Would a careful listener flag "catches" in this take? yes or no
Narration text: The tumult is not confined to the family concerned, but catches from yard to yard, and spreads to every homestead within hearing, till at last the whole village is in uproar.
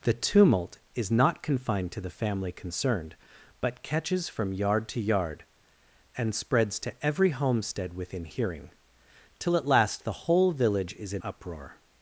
no